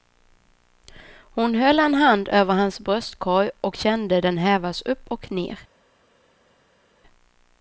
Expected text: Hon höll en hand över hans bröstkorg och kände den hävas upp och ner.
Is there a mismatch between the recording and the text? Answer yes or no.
no